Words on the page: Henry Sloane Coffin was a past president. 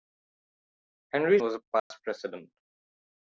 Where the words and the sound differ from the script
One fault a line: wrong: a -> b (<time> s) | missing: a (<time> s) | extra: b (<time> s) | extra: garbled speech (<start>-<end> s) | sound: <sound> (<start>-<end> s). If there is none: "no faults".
missing: Sloane Coffin (1.4 s)
sound: dropout (1.8-1.9 s)